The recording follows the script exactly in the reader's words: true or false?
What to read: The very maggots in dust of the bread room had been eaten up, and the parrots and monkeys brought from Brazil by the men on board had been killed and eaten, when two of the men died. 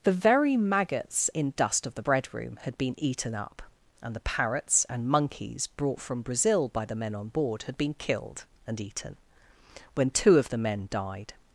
true